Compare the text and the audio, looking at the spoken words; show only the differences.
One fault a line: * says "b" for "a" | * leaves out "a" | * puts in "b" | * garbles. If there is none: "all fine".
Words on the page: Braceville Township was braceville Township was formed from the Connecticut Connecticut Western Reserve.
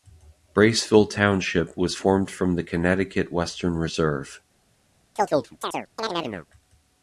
* leaves out "braceville Township was"
* leaves out "Connecticut"